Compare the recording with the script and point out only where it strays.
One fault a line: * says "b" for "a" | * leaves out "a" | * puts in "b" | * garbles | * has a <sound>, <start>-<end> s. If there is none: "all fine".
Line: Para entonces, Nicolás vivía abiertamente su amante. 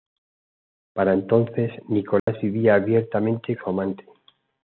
* has a dropout, 2.2-2.3 s